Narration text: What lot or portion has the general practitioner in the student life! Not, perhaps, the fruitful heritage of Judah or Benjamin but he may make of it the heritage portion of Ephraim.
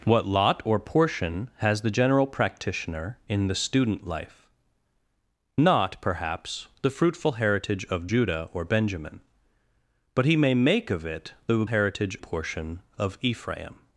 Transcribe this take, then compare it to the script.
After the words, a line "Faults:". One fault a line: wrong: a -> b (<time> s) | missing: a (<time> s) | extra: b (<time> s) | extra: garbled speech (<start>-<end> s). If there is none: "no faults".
What lot or portion has the general practitioner in the student life! Not, perhaps, the fruitful heritage of Judah or Benjamin but he may make of it the heritage portion of Ephraim.
Faults:
no faults